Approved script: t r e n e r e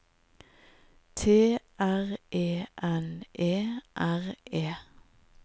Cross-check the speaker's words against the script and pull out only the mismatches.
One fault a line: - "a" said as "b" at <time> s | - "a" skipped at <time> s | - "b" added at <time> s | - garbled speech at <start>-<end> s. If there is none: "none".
none